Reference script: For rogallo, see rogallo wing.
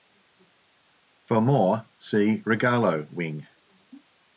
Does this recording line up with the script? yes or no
no